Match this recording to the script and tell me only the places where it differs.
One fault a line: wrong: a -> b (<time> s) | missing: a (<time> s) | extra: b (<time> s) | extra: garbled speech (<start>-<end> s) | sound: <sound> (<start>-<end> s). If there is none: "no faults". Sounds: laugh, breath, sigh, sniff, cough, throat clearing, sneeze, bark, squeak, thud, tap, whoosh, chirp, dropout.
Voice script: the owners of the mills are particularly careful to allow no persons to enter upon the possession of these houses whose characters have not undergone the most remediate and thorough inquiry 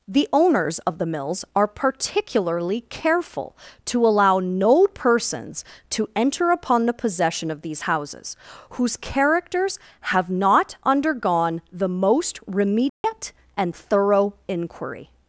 sound: dropout (12.9-13.0 s)